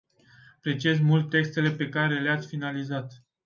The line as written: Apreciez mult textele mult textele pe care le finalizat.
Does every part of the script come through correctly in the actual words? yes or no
no